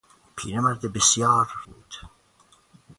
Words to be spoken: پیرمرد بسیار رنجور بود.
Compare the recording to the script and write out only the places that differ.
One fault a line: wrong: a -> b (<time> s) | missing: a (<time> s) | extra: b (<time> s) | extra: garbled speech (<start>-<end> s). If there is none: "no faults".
missing: رنجور (1.5 s)